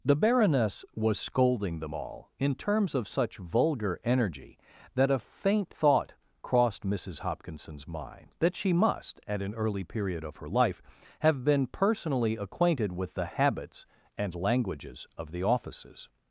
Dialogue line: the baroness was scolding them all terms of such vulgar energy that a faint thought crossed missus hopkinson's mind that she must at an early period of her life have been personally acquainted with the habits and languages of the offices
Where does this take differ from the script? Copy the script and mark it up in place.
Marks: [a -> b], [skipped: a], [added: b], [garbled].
the baroness was scolding them all [added: in] terms of such vulgar energy that a faint thought crossed missus hopkinson's mind that she must at an early period of her life have been personally acquainted with the habits and languages of the offices